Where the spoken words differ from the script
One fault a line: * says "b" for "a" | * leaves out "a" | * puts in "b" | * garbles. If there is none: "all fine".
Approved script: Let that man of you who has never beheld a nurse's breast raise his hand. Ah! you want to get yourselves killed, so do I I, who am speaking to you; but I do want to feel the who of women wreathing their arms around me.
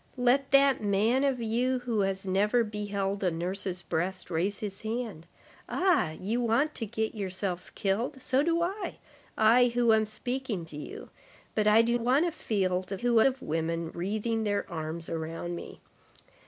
all fine